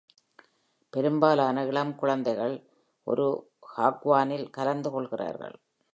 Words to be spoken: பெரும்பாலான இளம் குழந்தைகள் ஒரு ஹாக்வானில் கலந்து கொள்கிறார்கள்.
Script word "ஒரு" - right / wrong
right